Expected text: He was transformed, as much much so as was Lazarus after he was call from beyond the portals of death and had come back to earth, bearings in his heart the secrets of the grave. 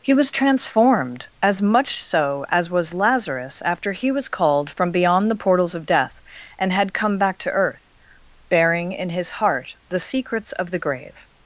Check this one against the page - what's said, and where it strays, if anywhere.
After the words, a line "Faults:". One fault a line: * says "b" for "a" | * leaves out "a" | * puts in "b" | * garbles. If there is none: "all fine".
He was transformed, as much so as was Lazarus after he was called from beyond the portals of death and had come back to earth, bearing in his heart the secrets of the grave.
Faults:
* leaves out "much"
* says "called" for "call"
* says "bearing" for "bearings"